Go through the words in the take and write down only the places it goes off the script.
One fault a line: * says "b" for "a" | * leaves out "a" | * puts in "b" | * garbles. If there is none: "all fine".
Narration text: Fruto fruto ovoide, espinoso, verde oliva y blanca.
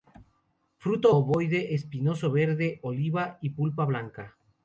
* leaves out "fruto"
* puts in "pulpa"